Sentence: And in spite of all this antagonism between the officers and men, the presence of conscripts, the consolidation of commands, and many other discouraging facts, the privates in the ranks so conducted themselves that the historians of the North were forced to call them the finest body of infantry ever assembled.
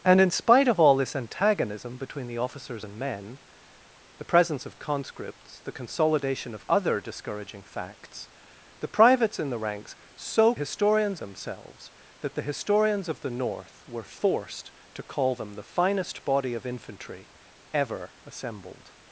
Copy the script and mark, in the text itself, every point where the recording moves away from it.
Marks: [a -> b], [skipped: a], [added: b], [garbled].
And in spite of all this antagonism between the officers and men, the presence of conscripts, the consolidation of [skipped: commands, and many] other discouraging facts, the privates in the ranks so [conducted -> historians] themselves that the historians of the North were forced to call them the finest body of infantry ever assembled.